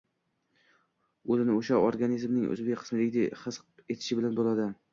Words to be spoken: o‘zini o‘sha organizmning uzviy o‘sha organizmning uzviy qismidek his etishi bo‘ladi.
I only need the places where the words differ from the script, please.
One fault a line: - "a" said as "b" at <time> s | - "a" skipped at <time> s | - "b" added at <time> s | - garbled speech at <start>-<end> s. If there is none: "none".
- "o‘sha organizmning uzviy" skipped at 2.8 s
- "bilan" added at 4.2 s